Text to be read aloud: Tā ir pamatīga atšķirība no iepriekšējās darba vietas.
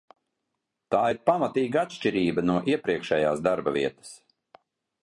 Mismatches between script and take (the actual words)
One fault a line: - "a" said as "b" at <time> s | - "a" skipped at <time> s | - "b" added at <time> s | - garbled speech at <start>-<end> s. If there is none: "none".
none